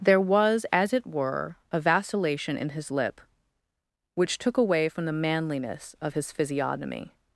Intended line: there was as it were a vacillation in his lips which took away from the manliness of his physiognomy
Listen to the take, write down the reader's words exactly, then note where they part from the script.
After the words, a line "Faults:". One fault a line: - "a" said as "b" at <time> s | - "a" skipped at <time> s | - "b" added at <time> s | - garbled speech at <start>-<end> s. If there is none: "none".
there was as it were a vacillation in his lip which took away from the manliness of his physiognomy
Faults:
- "lips" said as "lip" at 2.9 s